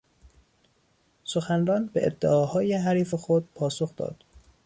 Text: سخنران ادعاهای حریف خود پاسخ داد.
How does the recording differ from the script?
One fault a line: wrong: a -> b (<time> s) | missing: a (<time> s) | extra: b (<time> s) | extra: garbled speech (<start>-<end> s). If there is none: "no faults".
extra: به (1.9 s)